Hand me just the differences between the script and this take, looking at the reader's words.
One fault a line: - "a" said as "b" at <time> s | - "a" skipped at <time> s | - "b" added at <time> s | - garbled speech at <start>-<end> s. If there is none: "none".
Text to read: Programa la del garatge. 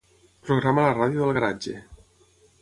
- "ràdio" added at 1.0 s